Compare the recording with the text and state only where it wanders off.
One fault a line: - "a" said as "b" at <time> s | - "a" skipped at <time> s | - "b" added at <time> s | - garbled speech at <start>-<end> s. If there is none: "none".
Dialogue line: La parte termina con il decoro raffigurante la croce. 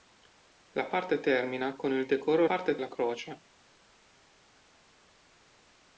- "raffigurante" said as "parte" at 2.4 s